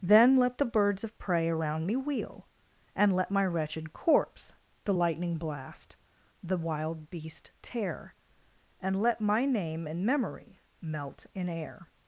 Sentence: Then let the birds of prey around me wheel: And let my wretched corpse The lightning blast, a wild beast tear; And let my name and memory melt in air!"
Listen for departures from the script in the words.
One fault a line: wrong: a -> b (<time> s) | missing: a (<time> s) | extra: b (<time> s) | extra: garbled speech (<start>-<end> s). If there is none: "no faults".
wrong: a -> the (6.4 s)